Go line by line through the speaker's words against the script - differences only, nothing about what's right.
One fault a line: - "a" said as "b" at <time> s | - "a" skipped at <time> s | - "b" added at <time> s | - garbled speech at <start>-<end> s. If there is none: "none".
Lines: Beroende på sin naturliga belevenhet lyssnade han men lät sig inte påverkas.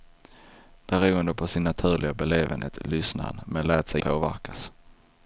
- "inte" skipped at 4.0 s